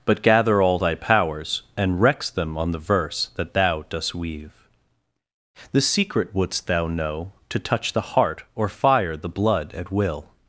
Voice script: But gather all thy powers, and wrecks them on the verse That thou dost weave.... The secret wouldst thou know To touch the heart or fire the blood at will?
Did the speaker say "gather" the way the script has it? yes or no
yes